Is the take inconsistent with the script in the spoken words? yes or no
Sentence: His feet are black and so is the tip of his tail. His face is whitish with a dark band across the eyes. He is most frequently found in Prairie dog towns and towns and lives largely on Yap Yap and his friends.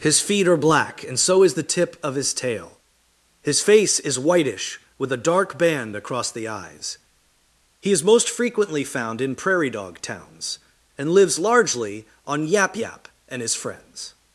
yes